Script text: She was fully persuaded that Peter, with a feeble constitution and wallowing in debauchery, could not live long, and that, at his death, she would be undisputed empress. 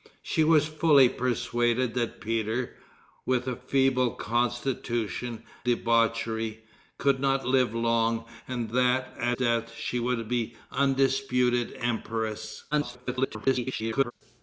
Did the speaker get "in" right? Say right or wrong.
wrong